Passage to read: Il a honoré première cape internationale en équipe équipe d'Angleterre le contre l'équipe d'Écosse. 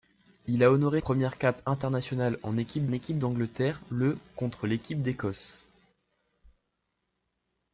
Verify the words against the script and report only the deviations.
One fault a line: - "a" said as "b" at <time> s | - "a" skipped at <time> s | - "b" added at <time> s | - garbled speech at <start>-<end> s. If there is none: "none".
none